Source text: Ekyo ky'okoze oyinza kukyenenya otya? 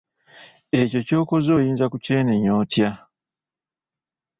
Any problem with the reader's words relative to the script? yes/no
no